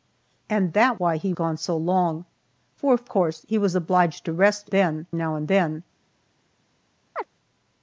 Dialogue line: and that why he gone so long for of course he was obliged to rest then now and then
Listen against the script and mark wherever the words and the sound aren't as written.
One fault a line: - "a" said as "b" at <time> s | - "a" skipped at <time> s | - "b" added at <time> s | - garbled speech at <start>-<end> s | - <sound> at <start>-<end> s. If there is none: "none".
- chirp at 7.1-7.3 s